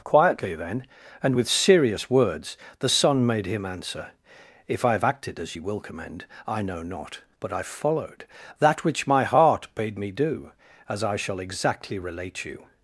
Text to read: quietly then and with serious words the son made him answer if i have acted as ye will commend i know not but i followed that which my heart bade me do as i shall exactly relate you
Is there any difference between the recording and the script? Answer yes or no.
no